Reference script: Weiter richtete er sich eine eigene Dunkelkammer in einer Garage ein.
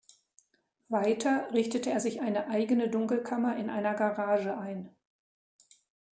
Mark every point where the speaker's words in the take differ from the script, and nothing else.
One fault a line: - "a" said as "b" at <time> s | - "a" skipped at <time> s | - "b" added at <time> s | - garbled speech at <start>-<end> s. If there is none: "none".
none